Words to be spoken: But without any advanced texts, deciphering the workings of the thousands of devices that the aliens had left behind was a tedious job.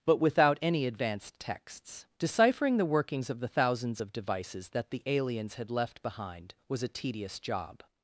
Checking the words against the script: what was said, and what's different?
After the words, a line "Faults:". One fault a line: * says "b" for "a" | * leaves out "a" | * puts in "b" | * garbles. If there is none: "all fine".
But without any advanced texts, deciphering the workings of the thousands of devices that the aliens had left behind was a tedious job.
Faults:
all fine